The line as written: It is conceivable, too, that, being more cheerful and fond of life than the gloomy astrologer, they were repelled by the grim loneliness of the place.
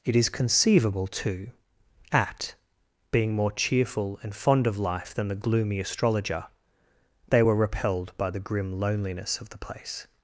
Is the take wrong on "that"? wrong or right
wrong